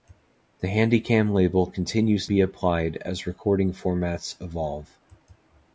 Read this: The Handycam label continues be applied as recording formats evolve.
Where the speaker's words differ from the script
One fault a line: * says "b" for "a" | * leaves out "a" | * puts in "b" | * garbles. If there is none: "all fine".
all fine